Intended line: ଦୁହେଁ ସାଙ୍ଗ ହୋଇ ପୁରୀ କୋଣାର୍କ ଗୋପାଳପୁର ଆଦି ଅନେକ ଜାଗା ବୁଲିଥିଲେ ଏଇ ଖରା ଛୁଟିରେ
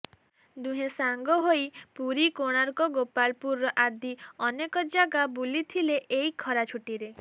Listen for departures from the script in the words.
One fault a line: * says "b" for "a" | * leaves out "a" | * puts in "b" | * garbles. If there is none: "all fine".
all fine